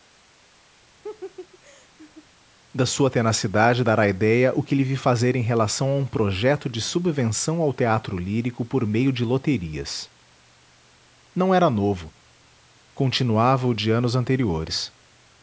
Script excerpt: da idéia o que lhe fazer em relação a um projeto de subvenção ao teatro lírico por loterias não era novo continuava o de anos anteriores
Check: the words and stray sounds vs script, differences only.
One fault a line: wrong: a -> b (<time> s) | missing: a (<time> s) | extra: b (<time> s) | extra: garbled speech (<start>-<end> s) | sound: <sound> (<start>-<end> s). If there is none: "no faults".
sound: laugh (1.0-2.3 s)
extra: sua tenacidade dará (2.9 s)
extra: vi (4.8 s)
extra: meio de (8.8 s)